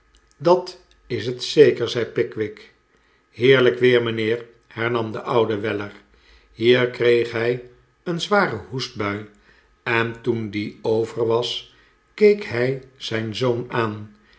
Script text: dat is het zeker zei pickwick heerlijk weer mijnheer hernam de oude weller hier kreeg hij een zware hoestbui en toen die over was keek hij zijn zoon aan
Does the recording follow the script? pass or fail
pass